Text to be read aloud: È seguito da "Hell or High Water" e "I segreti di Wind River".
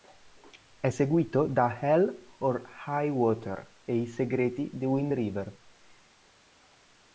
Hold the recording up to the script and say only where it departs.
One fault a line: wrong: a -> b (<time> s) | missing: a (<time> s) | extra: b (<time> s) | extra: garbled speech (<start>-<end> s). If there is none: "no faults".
no faults